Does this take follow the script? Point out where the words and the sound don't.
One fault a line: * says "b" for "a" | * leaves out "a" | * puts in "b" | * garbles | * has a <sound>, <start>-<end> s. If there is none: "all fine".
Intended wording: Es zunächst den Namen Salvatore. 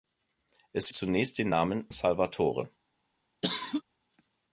* has a cough, 3.4-3.8 s